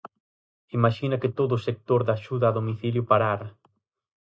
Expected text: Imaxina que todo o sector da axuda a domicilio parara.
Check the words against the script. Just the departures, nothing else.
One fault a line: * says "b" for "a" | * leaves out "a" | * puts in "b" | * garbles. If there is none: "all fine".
all fine